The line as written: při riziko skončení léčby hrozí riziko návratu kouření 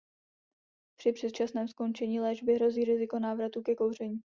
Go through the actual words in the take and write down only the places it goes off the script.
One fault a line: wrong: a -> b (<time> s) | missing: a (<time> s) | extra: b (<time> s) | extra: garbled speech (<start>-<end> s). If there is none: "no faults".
wrong: riziko -> předčasném (1.1 s)
extra: ke (3.6 s)